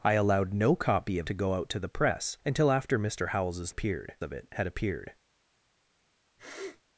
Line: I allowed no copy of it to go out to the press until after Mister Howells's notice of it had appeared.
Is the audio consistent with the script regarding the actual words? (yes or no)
no